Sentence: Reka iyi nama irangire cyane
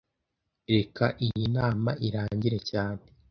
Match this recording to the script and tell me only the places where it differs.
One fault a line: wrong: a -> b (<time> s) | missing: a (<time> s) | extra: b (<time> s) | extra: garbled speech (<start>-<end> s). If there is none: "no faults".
no faults